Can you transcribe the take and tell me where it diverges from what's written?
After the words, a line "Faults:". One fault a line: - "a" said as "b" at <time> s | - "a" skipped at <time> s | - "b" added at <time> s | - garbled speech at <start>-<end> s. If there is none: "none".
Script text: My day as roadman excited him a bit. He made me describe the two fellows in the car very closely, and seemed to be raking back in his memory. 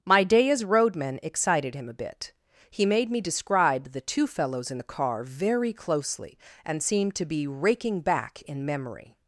My day as roadman excited him a bit. He made me describe the two fellows in the car very closely, and seemed to be raking back in memory.
Faults:
- "his" skipped at 8.6 s